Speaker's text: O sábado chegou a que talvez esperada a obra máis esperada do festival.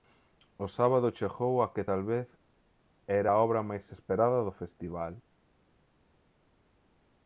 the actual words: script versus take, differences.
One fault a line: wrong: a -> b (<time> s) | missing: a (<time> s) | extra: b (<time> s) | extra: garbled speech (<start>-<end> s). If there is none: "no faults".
wrong: esperada -> era (3.2 s)